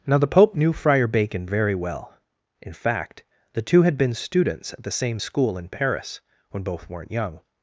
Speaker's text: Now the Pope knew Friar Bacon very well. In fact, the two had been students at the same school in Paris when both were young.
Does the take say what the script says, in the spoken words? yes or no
no